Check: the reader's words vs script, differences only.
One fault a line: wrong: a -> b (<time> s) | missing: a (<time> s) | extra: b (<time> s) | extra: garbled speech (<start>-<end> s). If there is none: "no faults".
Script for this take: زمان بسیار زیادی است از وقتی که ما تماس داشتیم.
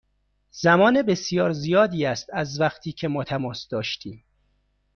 no faults